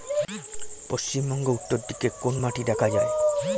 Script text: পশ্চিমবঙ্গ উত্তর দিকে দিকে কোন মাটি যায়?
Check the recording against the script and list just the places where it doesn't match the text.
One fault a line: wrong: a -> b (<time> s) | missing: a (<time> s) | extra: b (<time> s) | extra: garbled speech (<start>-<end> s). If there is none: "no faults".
missing: দিকে (2.1 s)
extra: দেখা (2.6 s)